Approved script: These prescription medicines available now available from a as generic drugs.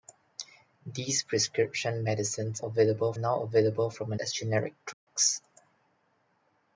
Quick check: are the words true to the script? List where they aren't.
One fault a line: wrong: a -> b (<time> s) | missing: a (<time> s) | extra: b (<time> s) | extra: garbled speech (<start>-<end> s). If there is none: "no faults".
no faults